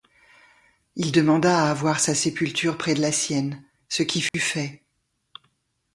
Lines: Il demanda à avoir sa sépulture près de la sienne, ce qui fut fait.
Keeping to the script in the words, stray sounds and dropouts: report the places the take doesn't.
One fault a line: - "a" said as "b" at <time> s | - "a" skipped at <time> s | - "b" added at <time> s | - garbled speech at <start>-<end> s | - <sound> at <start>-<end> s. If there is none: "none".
- dropout at 4.3-4.3 s